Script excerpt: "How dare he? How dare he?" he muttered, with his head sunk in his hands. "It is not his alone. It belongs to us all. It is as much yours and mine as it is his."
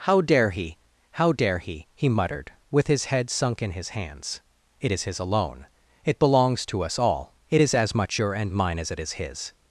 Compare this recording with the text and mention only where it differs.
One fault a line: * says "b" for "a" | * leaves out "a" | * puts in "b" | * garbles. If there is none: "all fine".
* leaves out "not"
* says "your" for "yours"